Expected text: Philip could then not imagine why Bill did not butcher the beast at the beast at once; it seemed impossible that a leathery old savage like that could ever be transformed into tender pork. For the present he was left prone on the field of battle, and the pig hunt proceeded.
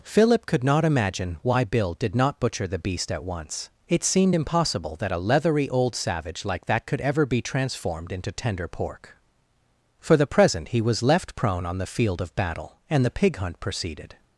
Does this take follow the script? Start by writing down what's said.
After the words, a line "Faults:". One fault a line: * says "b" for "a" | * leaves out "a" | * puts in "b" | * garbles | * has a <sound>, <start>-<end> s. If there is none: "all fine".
Philip could not imagine why Bill did not butcher the beast at once; it seemed impossible that a leathery old savage like that could ever be transformed into tender pork. For the present he was left prone on the field of battle, and the pig hunt proceeded.
Faults:
* leaves out "then"
* leaves out "the beast at"